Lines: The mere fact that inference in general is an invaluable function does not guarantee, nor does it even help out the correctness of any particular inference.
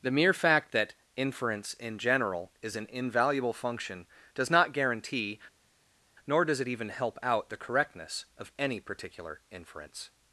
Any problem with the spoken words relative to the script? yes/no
no